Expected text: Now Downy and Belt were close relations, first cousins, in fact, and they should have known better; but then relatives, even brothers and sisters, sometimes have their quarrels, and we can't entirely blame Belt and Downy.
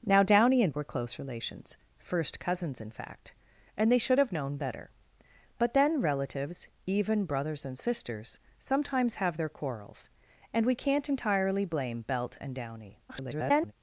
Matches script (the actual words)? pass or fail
fail